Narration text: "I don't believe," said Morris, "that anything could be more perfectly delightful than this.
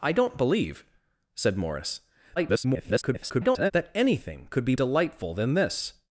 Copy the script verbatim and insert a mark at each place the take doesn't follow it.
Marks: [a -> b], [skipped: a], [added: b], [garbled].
"I don't believe," said Morris, [garbled] "that anything could be [skipped: more perfectly] delightful than this.